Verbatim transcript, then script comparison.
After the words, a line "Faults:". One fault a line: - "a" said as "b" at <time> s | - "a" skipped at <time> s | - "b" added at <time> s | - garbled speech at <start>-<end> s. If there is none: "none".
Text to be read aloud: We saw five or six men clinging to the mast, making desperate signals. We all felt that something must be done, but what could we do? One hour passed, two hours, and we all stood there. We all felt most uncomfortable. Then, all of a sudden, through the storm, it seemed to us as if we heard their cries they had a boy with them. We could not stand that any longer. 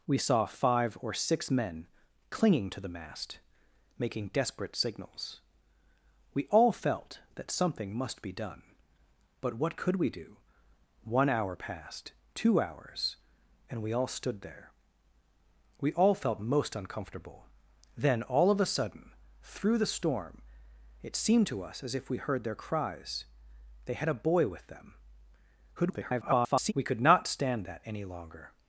We saw five or six men clinging to the mast, making desperate signals. We all felt that something must be done, but what could we do? One hour passed, two hours, and we all stood there. We all felt most uncomfortable. Then, all of a sudden, through the storm, it seemed to us as if we heard their cries they had a boy with them. [garbled] We could not stand that any longer.
Faults:
- garbled speech at 25.8-26.7 s